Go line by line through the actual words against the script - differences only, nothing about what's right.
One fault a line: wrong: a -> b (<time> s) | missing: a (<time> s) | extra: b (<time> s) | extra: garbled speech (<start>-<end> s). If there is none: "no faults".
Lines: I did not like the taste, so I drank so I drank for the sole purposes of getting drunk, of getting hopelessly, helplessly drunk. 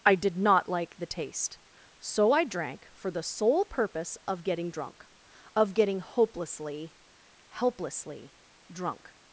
missing: so I drank (2.9 s)
wrong: purposes -> purpose (3.6 s)